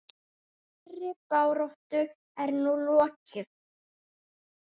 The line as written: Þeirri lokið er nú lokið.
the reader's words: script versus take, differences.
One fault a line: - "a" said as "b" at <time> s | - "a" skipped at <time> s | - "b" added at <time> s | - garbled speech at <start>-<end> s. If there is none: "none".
- "lokið" said as "baráttu" at 1.3 s